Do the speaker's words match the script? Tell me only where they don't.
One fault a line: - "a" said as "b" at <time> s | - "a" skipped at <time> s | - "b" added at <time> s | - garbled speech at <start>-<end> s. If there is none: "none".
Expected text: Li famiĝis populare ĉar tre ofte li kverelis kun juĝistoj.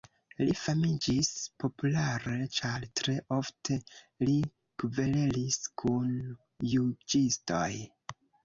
none